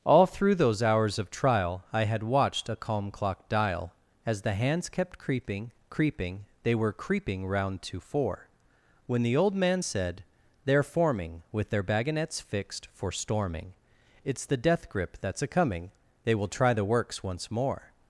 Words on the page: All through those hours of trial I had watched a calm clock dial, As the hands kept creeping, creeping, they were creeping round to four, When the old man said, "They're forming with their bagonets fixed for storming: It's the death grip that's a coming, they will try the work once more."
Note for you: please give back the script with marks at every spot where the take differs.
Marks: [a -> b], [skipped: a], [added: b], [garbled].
All through those hours of trial I had watched a calm clock dial, As the hands kept creeping, creeping, they were creeping round to four, When the old man said, "They're forming with their bagonets fixed for storming: It's the death grip that's a coming, they will try the [work -> works] once more."